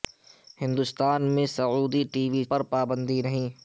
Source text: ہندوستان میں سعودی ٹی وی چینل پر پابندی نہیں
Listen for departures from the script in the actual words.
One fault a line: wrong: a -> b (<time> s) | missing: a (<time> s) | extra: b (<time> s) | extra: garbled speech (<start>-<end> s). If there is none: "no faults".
missing: چینل (2.4 s)